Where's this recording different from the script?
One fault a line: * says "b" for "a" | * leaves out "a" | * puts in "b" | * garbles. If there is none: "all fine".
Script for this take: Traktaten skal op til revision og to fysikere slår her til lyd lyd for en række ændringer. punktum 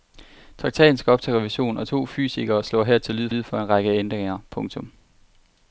all fine